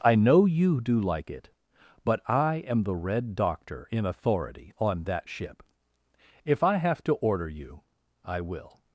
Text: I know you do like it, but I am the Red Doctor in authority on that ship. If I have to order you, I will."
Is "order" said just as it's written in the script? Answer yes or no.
yes